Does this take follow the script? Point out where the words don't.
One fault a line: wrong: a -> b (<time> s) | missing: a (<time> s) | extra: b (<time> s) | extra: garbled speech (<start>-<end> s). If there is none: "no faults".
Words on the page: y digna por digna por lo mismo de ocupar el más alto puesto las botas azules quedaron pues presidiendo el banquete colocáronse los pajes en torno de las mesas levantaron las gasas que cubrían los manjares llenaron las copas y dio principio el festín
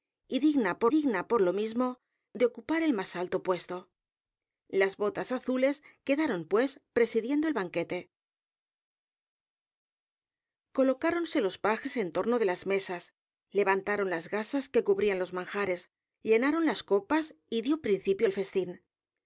no faults